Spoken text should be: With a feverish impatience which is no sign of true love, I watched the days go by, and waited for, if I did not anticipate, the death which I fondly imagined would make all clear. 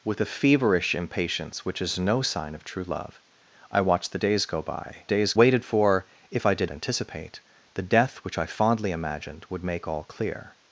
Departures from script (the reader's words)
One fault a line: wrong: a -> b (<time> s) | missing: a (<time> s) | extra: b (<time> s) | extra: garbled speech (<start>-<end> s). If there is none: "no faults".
wrong: and -> days (5.0 s)
missing: not (6.7 s)